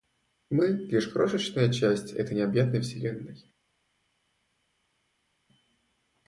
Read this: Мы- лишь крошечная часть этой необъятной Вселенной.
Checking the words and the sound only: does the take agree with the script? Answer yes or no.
yes